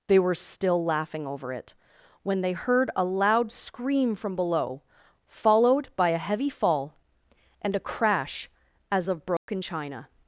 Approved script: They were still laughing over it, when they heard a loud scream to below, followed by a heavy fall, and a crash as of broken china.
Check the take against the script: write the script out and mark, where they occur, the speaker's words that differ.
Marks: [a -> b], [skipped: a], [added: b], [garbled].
They were still laughing over it, when they heard a loud scream [to -> from] below, followed by a heavy fall, and a crash as of broken china.